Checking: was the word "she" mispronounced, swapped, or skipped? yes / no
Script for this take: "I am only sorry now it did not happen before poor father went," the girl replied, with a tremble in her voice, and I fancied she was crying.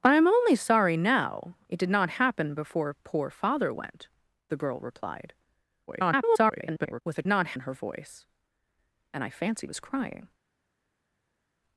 yes